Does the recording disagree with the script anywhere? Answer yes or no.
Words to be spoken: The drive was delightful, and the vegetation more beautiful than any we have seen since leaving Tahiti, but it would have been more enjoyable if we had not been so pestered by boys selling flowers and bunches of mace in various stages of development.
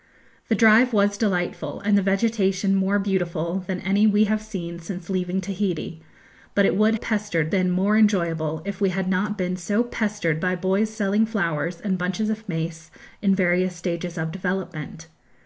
yes